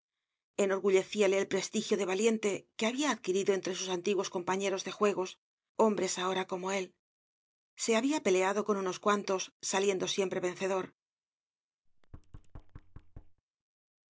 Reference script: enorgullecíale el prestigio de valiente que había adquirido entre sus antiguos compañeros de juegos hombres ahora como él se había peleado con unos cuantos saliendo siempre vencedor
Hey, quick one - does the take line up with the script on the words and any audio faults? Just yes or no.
no